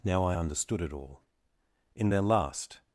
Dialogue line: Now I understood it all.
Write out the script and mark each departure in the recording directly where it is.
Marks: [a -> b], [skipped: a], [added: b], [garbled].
Now I understood it all. [added: In their last]